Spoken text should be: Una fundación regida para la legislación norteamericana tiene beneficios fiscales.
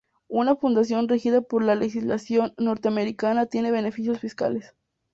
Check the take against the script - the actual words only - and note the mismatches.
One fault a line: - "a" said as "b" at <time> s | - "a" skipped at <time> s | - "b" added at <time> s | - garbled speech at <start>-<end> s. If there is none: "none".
- "para" said as "por" at 1.4 s